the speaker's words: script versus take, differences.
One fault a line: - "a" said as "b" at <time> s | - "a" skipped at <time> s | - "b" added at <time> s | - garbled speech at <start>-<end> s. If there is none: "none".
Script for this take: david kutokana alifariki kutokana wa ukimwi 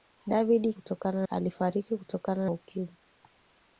none